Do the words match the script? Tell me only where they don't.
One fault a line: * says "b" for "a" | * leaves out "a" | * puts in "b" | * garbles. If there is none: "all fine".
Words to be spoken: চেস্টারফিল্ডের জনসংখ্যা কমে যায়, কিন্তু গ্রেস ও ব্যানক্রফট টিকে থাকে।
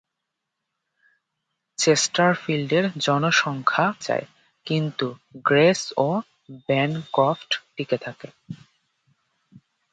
* leaves out "কমে"